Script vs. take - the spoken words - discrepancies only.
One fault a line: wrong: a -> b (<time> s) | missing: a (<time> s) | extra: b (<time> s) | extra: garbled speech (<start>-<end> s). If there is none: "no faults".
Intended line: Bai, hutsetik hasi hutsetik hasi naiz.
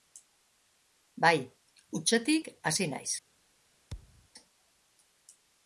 missing: hutsetik hasi (2.9 s)